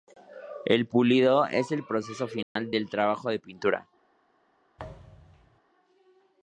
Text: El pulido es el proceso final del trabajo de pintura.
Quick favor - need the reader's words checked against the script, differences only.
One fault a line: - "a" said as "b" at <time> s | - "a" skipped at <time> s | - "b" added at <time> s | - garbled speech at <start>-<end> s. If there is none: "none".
none